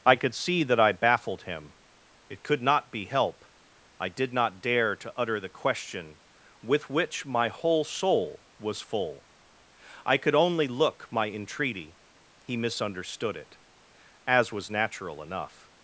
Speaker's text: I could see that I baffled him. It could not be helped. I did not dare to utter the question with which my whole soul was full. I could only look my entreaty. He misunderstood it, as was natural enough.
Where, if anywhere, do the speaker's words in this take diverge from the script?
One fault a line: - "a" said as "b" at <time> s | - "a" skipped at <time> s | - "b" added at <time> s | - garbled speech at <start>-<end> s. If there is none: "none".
- "helped" said as "help" at 3.0 s